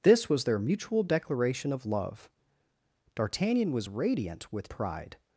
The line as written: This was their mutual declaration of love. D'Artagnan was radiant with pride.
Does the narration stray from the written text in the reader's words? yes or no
no